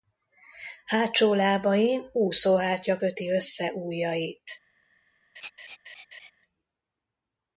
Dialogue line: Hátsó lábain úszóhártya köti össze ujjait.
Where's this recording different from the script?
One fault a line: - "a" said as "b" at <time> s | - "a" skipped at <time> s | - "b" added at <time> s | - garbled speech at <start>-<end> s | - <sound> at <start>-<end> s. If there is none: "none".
- laugh at 5.3-6.3 s